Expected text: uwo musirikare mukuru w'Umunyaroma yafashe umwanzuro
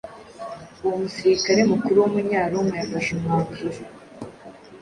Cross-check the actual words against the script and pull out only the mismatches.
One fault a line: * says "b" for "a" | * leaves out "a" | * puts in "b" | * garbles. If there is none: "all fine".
all fine